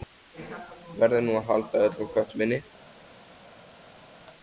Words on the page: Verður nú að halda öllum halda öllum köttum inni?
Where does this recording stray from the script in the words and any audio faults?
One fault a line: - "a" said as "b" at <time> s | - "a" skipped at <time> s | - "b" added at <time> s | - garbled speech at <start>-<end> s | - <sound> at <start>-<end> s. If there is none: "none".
- "halda öllum" skipped at 2.1 s